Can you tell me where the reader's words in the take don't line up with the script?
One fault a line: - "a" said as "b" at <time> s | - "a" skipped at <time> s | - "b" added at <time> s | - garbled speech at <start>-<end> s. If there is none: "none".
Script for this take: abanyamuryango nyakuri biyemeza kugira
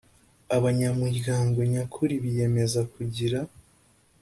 none